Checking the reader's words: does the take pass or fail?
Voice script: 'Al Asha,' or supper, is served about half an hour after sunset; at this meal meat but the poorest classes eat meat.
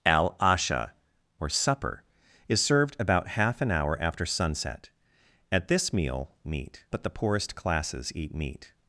pass